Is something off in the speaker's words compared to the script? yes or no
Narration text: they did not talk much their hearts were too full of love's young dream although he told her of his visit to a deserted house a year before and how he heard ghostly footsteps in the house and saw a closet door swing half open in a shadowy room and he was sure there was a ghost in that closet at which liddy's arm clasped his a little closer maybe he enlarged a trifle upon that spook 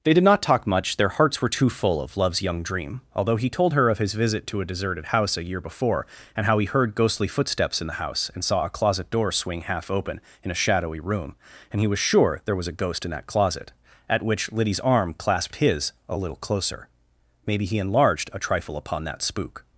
no